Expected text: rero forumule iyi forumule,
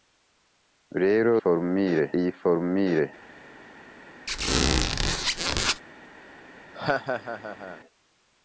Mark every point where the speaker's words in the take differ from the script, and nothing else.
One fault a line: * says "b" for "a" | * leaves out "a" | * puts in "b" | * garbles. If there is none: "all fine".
all fine